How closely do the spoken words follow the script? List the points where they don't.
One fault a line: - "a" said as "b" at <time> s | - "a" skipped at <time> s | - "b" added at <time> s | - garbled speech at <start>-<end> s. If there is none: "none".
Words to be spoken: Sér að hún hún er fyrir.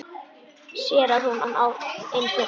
none